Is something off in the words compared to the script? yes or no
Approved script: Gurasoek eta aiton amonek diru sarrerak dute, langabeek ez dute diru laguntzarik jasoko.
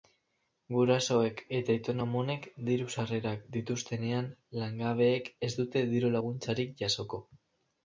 yes